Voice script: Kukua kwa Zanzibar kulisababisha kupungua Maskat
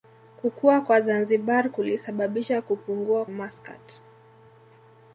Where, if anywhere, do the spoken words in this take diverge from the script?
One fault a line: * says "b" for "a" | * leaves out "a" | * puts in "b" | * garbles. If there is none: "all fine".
all fine